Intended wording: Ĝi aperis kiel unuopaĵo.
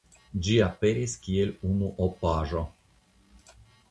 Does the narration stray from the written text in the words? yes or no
no